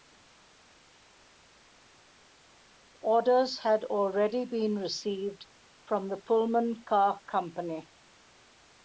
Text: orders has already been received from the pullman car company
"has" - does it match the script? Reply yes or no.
no